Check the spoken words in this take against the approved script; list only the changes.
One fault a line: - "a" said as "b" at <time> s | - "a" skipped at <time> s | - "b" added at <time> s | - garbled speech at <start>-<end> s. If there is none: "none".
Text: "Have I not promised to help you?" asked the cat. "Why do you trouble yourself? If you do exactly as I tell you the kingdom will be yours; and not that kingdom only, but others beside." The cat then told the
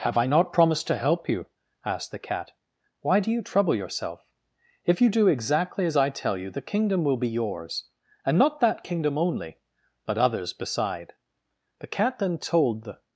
none